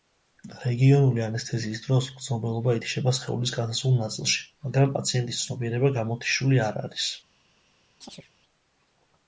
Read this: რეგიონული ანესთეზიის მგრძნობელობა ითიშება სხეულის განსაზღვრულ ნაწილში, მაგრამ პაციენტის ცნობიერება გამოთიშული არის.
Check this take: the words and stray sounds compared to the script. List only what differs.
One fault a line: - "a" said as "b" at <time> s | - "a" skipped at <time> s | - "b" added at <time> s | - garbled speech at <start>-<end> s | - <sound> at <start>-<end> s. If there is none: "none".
- "დროს" added at 1.8 s
- "არ" added at 6.7 s
- chirp at 8.0-8.3 s